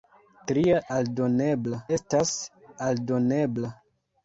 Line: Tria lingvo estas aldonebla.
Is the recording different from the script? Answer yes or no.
yes